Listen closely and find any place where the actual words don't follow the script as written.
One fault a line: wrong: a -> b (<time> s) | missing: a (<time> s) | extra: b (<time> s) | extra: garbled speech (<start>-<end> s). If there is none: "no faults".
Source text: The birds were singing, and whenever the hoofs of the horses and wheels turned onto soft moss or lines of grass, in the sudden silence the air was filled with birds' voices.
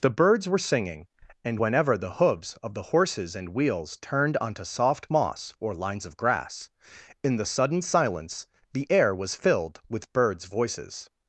no faults